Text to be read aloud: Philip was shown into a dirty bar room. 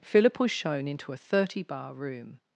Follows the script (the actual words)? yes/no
no